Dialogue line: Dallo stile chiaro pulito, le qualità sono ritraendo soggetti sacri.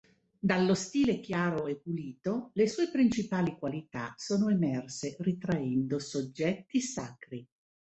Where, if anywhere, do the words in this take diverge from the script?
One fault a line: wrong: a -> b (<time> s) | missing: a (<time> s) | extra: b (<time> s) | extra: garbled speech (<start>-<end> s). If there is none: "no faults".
extra: e (1.7 s)
extra: sue principali (2.7 s)
extra: emerse (4.5 s)